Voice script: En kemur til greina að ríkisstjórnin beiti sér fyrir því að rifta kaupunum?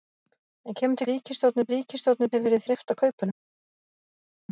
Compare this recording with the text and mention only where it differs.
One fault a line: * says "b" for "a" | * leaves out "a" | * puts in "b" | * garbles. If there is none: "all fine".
* says "ríkisstjórnin" for "greina"
* leaves out "beiti"
* leaves out "því"